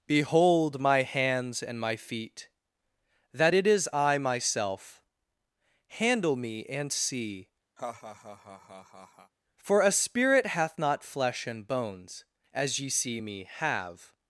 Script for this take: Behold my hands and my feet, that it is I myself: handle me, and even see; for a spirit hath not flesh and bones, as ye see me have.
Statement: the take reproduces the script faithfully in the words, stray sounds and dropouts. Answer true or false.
false